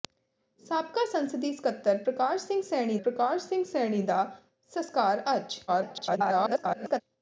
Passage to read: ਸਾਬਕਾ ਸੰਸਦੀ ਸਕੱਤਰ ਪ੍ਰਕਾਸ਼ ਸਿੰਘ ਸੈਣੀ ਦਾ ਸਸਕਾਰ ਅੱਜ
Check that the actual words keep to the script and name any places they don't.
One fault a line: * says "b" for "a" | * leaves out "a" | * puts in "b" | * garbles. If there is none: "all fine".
* puts in "ਪ੍ਰਕਾਸ਼ ਸਿੰਘ ਸੈਣੀ"
* garbles